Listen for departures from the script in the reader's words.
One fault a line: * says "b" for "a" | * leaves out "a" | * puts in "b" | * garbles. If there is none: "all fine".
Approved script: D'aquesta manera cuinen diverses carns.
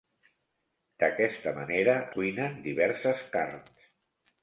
all fine